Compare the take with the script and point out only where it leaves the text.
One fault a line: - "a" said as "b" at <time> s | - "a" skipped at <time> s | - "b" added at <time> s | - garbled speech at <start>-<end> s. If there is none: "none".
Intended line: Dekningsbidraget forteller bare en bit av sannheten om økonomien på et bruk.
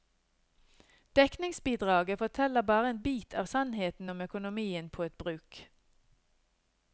none